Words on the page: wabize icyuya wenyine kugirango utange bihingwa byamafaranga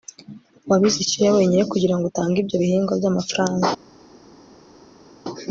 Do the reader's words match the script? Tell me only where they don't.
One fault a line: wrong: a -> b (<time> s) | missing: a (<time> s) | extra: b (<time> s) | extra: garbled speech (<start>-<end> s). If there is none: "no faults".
extra: ibyo (2.4 s)